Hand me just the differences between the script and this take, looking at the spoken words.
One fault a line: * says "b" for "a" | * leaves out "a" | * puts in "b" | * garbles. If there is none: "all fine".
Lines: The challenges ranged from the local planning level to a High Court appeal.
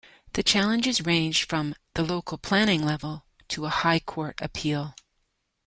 all fine